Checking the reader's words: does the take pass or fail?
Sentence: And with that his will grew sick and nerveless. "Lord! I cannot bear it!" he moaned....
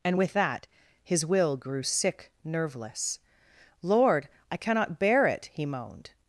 fail